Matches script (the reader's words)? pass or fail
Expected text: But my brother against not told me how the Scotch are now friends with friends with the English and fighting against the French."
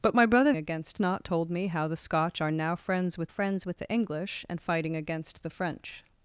pass